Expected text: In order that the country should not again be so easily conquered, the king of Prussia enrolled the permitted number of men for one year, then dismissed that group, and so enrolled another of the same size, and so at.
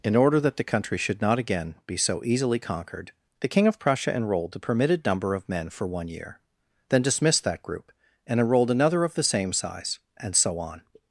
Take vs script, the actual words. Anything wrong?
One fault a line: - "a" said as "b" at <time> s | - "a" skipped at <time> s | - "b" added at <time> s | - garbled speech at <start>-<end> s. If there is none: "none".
- "so" skipped at 8.4 s
- "at" said as "on" at 10.6 s